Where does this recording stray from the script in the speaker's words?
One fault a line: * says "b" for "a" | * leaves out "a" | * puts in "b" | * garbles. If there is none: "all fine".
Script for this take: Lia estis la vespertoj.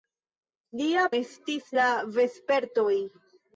all fine